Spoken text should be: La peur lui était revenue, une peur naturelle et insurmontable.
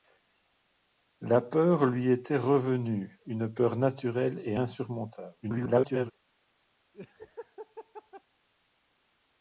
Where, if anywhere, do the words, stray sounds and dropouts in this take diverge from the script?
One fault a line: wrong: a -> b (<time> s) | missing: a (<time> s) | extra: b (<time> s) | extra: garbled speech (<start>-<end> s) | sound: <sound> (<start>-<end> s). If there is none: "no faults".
extra: garbled speech (5.4-6.1 s)
sound: laugh (6.9-8.2 s)